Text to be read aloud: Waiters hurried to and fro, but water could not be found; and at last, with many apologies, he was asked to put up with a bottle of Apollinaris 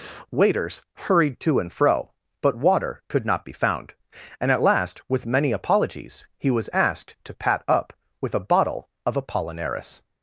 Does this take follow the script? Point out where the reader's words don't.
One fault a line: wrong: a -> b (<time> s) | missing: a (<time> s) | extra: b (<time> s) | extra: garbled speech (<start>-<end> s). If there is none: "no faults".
wrong: put -> pat (7.3 s)